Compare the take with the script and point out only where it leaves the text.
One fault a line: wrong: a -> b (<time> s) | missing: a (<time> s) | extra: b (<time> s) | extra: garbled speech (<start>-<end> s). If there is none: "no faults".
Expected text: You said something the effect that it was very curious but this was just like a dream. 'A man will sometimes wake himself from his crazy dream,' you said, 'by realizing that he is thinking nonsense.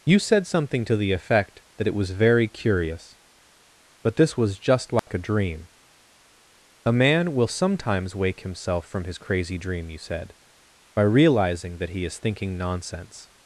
extra: to (0.8 s)